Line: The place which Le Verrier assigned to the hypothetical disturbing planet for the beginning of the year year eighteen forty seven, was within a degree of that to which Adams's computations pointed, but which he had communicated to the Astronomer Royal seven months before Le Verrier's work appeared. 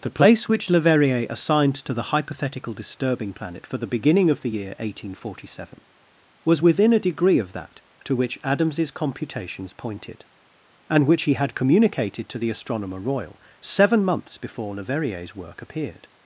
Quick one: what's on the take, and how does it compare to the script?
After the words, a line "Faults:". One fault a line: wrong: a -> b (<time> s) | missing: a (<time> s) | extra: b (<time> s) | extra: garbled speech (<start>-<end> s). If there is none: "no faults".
The place which Le Verrier assigned to the hypothetical disturbing planet for the beginning of the year eighteen forty seven, was within a degree of that to which Adams's computations pointed, and which he had communicated to the Astronomer Royal seven months before Le Verrier's work appeared.
Faults:
missing: year (4.7 s)
wrong: but -> and (10.9 s)